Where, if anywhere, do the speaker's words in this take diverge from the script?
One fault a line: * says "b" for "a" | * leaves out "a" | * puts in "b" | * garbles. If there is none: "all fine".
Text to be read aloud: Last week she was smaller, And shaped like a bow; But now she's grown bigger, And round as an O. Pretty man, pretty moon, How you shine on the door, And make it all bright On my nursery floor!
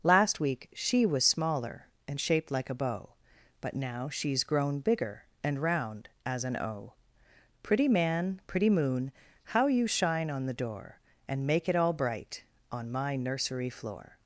all fine